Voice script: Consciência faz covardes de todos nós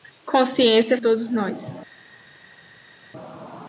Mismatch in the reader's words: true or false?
true